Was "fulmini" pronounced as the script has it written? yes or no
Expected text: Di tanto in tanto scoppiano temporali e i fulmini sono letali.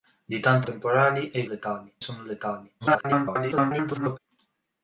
no